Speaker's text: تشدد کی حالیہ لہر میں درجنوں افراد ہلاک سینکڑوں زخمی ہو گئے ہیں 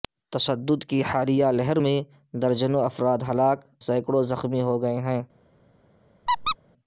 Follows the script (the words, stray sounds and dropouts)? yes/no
no